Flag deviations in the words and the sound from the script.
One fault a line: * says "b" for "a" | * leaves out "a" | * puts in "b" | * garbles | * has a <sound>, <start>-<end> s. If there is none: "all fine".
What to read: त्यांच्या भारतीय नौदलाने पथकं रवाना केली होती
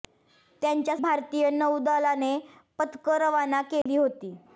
* has a dropout, 3.8-3.9 s